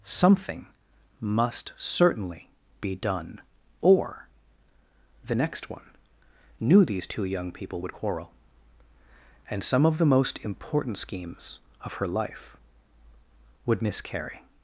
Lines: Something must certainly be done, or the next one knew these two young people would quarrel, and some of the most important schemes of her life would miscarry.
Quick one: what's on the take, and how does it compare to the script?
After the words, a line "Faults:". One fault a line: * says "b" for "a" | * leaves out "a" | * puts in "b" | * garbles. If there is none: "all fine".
Something must certainly be done, or the next one knew these two young people would quarrel, and some of the most important schemes of her life would miscarry.
Faults:
all fine